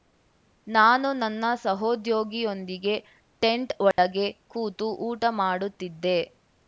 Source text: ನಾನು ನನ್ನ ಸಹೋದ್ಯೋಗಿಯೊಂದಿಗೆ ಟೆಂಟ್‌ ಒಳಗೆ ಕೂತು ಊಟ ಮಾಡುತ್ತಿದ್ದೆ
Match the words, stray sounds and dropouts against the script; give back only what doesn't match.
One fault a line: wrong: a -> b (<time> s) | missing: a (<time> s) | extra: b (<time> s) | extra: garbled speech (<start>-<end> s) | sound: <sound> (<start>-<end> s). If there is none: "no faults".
sound: dropout (3.9-4.0 s)